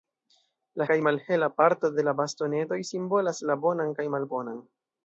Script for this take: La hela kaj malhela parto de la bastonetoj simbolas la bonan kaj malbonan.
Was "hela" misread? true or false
true